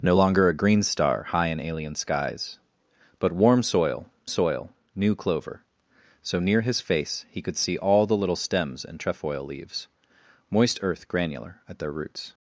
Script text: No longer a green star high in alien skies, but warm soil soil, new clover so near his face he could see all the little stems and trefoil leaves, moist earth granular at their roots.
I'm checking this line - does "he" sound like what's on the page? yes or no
yes